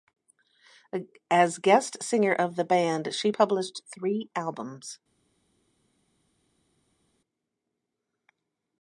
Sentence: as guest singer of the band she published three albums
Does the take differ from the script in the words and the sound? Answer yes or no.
no